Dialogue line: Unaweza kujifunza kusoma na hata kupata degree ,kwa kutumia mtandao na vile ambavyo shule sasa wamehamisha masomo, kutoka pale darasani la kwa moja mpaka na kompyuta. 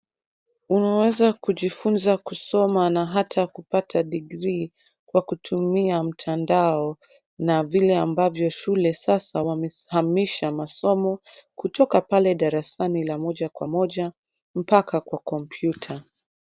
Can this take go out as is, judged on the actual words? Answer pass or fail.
fail